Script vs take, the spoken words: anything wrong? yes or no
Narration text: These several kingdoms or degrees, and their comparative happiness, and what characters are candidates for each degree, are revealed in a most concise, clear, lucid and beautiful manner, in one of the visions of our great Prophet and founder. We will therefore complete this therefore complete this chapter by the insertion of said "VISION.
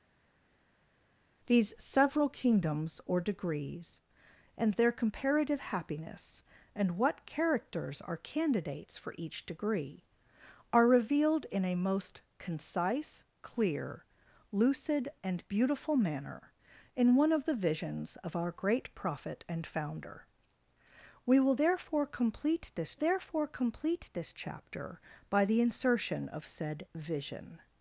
no